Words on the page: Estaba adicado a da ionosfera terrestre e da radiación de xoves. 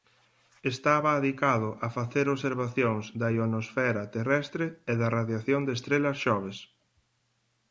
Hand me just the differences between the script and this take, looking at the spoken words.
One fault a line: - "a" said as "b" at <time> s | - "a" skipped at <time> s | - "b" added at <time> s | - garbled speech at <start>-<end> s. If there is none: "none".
- "facer observacións" added at 2.0 s
- "estrelas" added at 5.8 s